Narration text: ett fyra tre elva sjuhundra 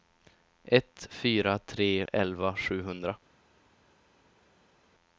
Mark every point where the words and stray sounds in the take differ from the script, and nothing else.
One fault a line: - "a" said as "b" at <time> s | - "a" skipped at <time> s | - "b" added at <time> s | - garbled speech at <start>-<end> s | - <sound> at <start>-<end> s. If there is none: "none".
none